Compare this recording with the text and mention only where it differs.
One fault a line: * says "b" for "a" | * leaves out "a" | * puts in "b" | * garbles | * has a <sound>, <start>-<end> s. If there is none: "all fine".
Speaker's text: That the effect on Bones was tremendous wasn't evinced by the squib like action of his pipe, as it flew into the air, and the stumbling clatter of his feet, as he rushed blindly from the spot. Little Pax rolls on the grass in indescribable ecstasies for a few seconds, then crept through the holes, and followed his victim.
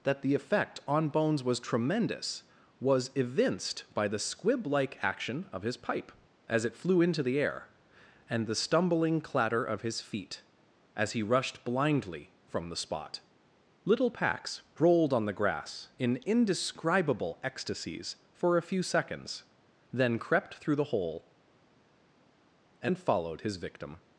* says "was" for "wasn't"
* says "rolled" for "rolls"
* says "hole" for "holes"